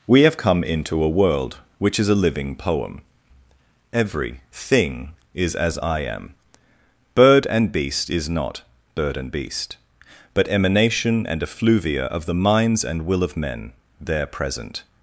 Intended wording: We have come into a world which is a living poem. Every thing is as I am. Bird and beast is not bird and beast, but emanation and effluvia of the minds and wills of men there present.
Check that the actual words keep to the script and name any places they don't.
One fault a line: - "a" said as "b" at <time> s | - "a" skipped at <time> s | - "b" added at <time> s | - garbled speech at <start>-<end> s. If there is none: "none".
- "wills" said as "will" at 13.0 s